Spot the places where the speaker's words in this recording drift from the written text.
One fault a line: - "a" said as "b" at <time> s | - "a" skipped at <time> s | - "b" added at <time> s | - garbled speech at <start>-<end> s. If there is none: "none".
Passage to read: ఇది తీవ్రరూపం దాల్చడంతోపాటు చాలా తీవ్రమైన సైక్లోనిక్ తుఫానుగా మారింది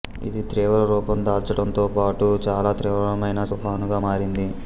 - "సైక్లోనిక్" skipped at 3.4 s